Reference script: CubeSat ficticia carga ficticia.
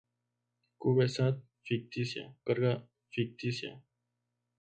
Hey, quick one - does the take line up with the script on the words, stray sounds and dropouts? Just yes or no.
yes